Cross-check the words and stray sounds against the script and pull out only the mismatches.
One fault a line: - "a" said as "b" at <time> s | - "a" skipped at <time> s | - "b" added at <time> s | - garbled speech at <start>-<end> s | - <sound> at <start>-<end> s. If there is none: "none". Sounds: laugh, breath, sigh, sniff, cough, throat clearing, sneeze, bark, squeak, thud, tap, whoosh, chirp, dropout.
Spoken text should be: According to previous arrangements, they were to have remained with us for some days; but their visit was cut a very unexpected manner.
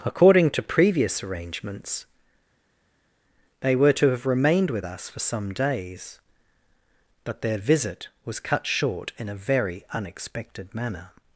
- "short in" added at 8.7 s